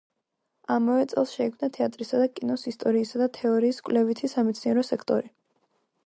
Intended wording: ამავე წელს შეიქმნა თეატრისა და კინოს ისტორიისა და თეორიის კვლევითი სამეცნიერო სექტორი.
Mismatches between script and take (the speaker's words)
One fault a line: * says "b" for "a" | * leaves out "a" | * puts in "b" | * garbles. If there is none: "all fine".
all fine